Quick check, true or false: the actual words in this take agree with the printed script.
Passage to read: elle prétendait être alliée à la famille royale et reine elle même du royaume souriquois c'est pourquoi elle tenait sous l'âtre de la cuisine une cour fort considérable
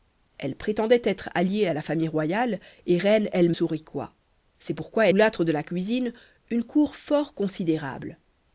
false